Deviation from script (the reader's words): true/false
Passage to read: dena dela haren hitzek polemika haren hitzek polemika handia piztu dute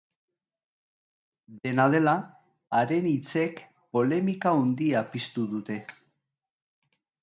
true